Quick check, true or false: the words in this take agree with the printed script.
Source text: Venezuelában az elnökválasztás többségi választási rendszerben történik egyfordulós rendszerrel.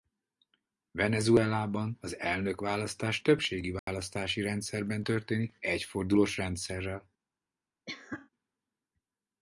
true